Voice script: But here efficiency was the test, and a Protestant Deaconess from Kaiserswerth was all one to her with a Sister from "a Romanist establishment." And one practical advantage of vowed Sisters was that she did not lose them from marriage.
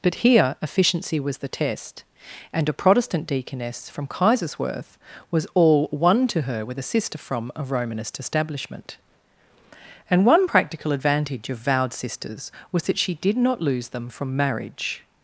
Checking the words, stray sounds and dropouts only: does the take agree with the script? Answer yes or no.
yes